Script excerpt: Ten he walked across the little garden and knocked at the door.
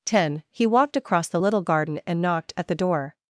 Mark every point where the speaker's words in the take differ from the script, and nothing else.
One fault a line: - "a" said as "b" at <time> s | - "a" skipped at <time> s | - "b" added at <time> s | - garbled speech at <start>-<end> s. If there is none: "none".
none